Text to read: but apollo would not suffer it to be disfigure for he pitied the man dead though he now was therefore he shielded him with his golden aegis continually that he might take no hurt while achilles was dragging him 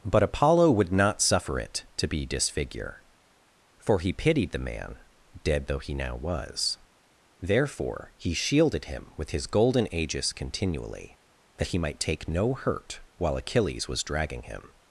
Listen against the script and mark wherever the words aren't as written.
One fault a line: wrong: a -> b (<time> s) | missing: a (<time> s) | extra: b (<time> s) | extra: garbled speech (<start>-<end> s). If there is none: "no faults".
no faults